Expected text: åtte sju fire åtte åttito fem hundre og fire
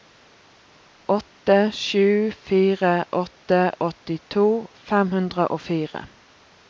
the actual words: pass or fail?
pass